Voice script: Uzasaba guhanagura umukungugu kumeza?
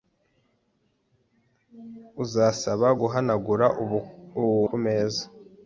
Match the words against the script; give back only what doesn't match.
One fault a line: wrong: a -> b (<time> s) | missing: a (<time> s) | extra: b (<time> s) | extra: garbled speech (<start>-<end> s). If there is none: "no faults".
missing: umukungugu (3.7 s)